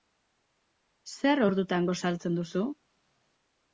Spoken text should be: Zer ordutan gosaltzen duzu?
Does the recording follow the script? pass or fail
pass